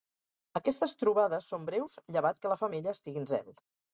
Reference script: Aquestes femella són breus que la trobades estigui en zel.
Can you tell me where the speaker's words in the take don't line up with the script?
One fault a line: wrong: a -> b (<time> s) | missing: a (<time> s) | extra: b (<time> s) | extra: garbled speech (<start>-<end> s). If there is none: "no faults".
wrong: femella -> trobades (1.0 s)
extra: llevat (2.2 s)
wrong: trobades -> femella (2.6 s)